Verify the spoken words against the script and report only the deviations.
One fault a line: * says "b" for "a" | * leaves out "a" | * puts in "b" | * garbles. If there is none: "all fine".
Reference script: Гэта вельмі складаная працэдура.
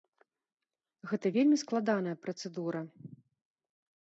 all fine